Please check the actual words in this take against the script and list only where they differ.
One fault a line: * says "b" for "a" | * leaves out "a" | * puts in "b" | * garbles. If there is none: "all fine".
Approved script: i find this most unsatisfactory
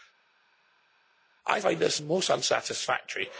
all fine